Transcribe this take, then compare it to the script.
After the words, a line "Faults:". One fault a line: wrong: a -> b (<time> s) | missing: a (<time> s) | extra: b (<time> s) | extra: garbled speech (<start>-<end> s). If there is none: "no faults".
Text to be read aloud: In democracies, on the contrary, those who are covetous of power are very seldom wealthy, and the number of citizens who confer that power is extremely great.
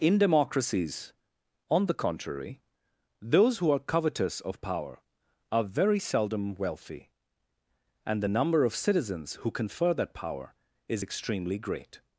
In democracies, on the contrary, those who are covetous of power are very seldom wealthy, and the number of citizens who confer that power is extremely great.
Faults:
no faults